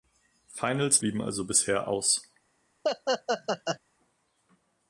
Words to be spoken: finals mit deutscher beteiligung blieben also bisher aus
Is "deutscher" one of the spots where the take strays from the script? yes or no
yes